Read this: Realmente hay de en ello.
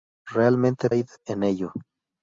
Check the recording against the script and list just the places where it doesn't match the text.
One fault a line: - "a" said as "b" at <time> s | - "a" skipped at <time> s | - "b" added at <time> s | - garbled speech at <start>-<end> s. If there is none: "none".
none